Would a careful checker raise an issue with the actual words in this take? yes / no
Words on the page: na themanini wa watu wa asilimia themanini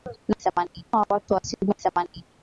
no